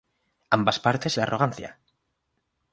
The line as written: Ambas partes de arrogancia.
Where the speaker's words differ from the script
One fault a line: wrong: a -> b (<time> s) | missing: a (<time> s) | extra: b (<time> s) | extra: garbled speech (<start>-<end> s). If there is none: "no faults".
no faults